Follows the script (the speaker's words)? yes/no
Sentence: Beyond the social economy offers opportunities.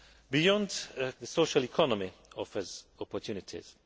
yes